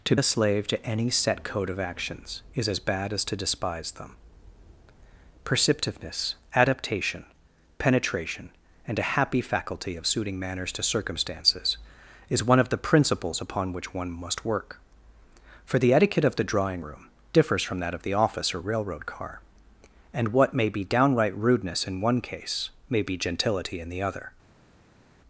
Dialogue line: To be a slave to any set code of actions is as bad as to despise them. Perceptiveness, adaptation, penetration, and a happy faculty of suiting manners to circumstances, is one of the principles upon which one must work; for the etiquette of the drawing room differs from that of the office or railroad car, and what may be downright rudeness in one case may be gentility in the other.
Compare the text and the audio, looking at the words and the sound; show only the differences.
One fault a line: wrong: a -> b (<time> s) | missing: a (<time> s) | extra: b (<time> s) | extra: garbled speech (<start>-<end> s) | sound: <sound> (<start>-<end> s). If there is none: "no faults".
missing: be (0.1 s)